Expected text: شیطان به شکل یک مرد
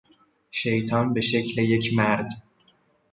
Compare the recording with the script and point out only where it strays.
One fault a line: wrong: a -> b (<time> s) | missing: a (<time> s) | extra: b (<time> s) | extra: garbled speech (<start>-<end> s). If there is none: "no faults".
no faults